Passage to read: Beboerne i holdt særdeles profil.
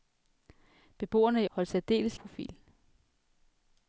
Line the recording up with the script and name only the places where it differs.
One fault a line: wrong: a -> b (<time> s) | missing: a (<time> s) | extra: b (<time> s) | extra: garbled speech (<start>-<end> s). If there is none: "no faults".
no faults